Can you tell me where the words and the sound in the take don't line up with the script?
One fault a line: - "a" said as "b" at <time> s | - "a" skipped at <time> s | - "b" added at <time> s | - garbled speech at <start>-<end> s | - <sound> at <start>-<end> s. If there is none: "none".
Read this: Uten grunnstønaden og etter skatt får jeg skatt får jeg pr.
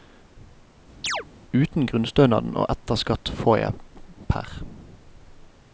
- chirp at 1.0-1.3 s
- "skatt får jeg" skipped at 3.7 s